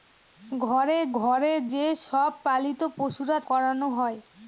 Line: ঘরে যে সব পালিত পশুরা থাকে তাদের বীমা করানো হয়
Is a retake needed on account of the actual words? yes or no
yes